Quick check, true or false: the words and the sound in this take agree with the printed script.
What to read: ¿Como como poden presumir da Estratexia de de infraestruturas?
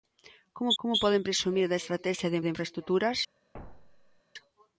false